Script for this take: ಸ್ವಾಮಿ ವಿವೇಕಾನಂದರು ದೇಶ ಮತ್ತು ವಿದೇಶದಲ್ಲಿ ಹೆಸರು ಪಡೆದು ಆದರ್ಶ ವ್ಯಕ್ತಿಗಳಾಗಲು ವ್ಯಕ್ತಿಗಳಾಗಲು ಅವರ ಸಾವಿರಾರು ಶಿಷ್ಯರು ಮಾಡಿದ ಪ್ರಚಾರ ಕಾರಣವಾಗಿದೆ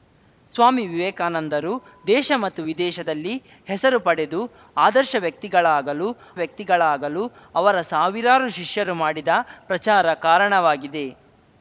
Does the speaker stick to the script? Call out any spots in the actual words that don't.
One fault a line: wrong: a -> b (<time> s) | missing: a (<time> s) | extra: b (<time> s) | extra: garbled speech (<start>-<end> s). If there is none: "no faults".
no faults